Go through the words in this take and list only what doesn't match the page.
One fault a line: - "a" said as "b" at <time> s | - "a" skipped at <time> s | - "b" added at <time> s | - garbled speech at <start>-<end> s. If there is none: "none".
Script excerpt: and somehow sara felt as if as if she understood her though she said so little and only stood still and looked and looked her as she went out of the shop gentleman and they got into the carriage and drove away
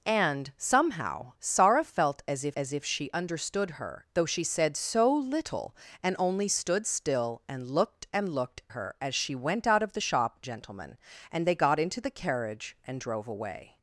none